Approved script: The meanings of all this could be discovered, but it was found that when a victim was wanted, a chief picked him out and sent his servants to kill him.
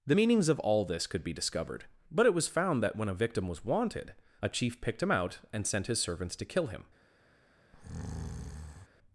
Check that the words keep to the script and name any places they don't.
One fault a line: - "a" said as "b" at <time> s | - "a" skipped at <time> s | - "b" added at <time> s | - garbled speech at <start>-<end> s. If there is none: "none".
none